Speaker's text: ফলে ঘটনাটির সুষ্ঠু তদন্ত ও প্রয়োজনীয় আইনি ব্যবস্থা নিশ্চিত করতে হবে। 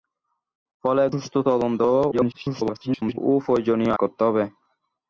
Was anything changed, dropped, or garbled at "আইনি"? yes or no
yes